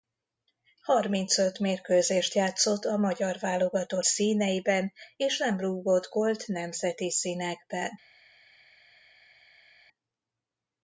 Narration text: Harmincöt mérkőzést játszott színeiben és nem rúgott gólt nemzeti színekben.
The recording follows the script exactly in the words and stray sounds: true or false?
false